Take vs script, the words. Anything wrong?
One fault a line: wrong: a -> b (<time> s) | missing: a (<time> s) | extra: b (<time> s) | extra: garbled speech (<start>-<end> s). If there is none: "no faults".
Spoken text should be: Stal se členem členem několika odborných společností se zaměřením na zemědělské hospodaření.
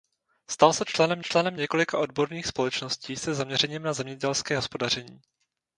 no faults